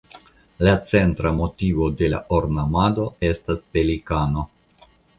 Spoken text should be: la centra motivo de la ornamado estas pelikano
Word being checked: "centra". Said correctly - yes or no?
yes